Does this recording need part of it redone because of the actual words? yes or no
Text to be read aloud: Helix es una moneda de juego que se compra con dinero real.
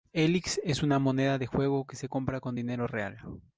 no